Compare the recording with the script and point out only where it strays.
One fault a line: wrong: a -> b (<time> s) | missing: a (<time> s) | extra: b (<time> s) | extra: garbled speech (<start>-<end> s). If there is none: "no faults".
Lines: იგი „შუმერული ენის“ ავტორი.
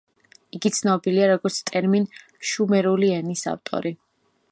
extra: ცნობილია როგორც ტერმინ (0.8 s)